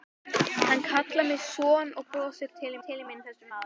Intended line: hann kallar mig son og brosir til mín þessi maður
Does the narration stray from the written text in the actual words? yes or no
yes